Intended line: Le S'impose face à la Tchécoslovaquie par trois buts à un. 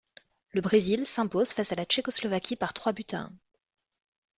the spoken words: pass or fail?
fail